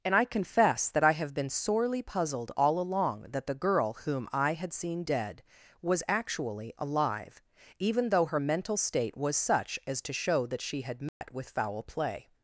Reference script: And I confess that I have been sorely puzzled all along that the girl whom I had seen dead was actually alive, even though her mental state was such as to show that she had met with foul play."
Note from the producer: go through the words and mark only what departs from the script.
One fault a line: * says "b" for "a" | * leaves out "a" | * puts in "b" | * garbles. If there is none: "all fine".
all fine